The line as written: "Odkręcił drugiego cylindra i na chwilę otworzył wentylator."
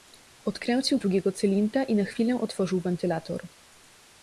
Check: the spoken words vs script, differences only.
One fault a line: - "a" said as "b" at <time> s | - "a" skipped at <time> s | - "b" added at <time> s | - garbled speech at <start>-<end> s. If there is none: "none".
none